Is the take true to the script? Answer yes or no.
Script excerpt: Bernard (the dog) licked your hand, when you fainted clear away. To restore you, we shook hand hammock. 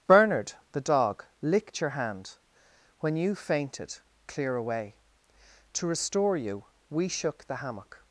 no